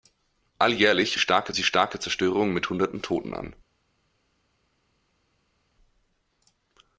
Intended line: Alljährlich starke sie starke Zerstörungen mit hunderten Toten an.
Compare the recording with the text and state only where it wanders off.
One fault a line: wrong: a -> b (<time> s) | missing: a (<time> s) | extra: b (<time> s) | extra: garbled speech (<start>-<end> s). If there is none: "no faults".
no faults